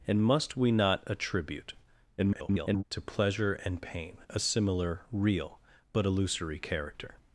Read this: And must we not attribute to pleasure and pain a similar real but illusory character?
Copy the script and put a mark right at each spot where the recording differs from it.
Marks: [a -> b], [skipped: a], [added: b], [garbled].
And must we not attribute [garbled] to pleasure and pain a similar real but illusory character?